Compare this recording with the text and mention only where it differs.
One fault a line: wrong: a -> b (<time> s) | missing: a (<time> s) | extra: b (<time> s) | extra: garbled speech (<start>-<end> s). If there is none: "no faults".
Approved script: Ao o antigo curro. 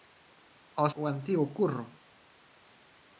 no faults